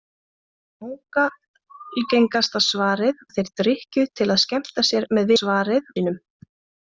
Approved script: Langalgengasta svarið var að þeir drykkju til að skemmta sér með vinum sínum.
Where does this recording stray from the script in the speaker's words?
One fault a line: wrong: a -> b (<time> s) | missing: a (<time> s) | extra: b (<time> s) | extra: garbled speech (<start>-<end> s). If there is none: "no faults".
missing: var (3.2 s)
wrong: vinum -> svarið (5.4 s)